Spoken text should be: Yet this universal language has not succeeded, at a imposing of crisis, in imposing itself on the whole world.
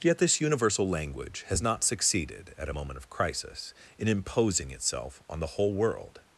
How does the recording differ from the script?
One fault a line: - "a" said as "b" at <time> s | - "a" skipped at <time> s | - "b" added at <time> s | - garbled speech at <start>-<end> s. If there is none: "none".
- "imposing" said as "moment" at 2.7 s